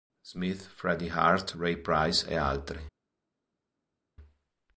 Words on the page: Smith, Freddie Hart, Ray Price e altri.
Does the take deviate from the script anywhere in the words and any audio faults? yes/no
no